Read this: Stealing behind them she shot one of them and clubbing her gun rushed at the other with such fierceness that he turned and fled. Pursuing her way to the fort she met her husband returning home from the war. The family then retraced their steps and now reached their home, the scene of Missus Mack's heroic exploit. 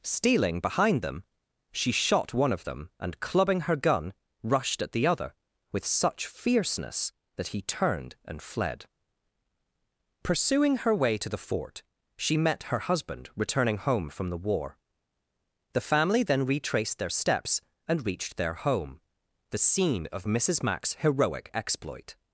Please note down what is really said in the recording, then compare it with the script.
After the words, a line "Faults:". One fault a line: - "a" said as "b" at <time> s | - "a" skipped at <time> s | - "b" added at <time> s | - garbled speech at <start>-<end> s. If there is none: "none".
Stealing behind them she shot one of them and clubbing her gun rushed at the other with such fierceness that he turned and fled. Pursuing her way to the fort she met her husband returning home from the war. The family then retraced their steps and reached their home, the scene of Missus Mack's heroic exploit.
Faults:
- "now" skipped at 18.1 s